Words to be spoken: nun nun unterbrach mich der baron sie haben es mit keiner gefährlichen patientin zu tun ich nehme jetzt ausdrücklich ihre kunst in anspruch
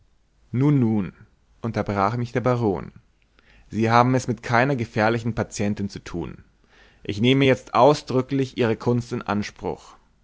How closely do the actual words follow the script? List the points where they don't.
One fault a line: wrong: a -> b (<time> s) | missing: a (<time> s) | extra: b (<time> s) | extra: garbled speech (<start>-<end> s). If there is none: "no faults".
no faults